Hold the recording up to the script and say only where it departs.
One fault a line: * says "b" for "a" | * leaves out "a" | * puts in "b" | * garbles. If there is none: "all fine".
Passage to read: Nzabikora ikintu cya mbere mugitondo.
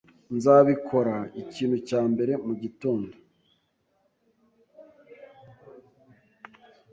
all fine